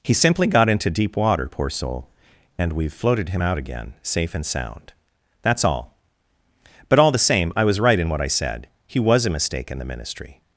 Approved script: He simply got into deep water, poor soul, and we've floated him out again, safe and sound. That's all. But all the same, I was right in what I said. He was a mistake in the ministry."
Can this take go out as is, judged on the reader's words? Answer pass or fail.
pass